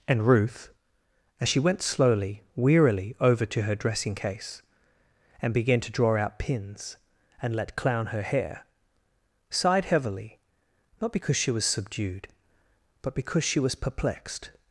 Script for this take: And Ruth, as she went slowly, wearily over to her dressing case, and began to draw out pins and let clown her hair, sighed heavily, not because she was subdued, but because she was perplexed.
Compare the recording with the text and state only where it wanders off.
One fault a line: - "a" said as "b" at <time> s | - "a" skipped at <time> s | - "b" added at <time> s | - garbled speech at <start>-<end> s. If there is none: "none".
none